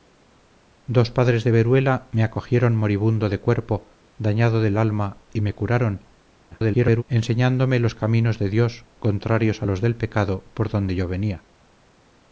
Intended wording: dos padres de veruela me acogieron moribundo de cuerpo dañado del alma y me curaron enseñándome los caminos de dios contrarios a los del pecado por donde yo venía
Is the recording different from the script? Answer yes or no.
yes